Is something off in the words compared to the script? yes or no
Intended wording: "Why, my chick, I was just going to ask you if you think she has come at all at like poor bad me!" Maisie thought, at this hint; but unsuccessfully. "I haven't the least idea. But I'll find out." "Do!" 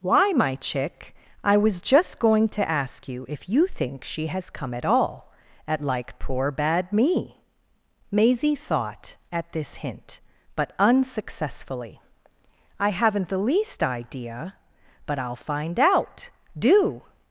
no